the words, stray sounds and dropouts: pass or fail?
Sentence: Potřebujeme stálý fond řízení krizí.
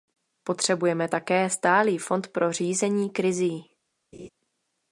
fail